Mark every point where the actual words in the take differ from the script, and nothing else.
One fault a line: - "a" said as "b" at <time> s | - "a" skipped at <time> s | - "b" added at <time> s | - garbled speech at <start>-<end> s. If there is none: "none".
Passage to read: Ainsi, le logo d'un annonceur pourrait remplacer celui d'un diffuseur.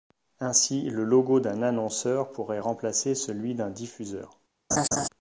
none